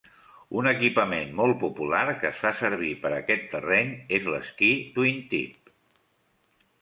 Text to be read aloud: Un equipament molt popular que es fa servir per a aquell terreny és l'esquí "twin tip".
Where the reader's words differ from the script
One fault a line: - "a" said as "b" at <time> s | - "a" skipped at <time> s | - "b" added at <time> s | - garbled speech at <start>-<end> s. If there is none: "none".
- "aquell" said as "aquest" at 3.2 s